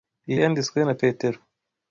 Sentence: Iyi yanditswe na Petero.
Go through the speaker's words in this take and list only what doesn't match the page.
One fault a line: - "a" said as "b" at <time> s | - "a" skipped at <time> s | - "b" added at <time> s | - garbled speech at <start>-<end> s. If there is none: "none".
none